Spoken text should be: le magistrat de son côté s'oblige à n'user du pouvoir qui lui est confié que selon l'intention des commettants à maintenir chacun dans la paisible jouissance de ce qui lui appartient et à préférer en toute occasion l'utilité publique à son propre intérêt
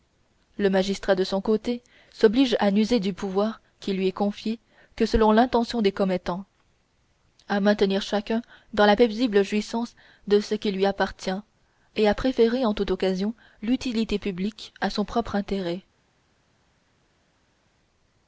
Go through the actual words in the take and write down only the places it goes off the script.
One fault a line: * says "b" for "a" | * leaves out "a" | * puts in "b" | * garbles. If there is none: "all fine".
all fine